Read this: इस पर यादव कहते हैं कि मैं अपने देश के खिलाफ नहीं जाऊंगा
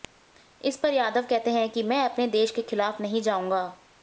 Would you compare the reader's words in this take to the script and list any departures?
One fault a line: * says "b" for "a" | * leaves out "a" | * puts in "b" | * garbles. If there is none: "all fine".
all fine